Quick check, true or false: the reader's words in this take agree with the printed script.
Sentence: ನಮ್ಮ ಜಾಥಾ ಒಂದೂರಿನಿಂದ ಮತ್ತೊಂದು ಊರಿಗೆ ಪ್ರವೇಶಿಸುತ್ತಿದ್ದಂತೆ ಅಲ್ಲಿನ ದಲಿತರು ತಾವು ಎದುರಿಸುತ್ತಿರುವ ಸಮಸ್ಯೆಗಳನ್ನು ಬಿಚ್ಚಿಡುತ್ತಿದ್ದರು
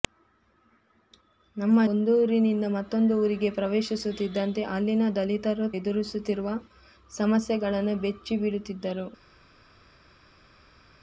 false